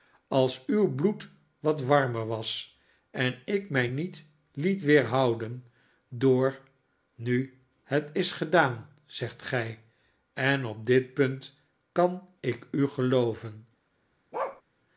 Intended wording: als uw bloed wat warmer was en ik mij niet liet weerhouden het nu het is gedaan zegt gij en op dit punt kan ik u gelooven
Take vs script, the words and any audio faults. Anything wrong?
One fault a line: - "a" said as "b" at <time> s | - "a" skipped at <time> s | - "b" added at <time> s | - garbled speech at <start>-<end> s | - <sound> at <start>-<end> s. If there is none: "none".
- "het" said as "door" at 6.1 s
- bark at 14.3-14.6 s